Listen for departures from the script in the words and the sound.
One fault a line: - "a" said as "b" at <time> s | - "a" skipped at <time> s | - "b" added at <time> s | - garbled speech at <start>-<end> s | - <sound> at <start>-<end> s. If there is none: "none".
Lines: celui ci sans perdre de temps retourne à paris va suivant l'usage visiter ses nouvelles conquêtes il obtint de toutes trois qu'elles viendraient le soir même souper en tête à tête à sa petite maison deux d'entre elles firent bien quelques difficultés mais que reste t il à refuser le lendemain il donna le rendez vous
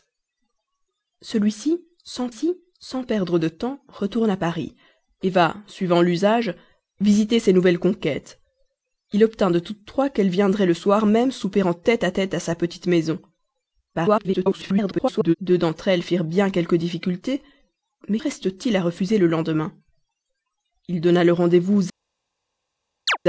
- "ci sans" added at 2.3 s
- garbled speech at 13.9-15.4 s
- "que" skipped at 18.2 s
- chirp at 23.1-23.2 s